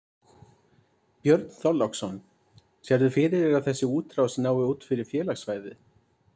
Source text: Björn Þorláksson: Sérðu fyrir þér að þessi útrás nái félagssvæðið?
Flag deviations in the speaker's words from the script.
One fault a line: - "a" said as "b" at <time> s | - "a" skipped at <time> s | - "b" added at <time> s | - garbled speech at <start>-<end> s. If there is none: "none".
- "út fyrir" added at 4.7 s